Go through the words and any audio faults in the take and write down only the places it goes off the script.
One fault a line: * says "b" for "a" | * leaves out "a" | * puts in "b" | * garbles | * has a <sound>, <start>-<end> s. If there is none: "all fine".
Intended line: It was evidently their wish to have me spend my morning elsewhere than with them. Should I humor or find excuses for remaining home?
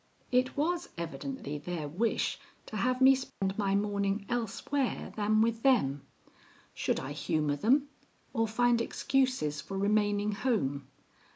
* has a dropout, 3.3-3.4 s
* puts in "them"